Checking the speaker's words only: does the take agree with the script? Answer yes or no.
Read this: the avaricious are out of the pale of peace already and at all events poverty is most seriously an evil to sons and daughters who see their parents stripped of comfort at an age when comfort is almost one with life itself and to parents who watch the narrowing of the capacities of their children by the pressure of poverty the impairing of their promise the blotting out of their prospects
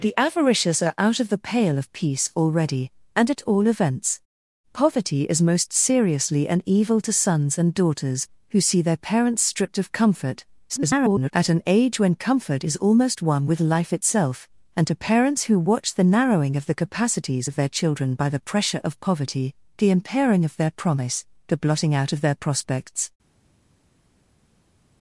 no